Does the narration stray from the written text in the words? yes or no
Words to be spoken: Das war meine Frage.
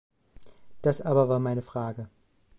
yes